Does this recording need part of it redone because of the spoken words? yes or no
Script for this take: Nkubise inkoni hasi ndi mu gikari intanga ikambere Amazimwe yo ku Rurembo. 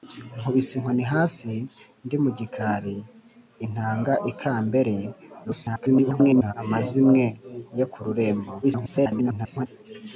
yes